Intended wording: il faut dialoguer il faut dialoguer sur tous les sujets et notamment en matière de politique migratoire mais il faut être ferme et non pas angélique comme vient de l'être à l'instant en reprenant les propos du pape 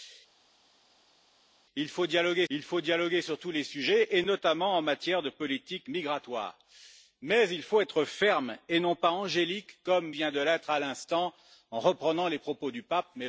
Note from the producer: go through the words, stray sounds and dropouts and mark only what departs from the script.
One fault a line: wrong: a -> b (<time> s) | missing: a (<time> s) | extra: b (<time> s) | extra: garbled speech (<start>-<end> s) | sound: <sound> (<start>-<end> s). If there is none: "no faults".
no faults